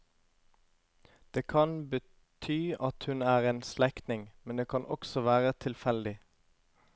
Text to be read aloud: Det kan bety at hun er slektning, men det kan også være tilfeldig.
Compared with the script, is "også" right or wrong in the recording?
right